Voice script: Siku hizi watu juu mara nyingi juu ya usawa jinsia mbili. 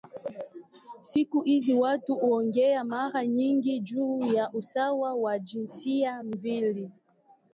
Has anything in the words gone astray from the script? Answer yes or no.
yes